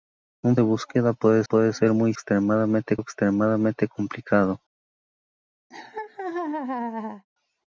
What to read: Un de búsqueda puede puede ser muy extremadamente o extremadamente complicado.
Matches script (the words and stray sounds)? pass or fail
fail